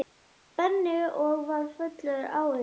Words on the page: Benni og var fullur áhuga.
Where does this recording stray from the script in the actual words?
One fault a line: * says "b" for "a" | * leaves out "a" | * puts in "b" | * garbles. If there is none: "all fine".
all fine